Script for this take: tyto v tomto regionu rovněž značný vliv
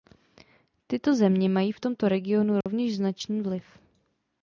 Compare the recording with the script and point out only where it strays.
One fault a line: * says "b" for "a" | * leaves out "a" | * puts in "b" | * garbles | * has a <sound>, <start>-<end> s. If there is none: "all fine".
* puts in "země mají"
* has a dropout, 2.6-2.7 s